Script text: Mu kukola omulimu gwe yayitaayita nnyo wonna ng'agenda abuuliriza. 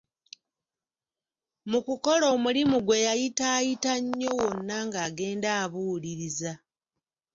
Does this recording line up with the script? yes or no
yes